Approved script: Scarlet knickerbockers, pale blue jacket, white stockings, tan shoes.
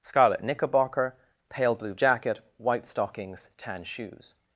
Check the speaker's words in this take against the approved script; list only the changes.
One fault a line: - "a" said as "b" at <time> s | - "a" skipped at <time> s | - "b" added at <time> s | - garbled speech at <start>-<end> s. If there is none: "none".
- "knickerbockers" said as "knickerbocker" at 0.4 s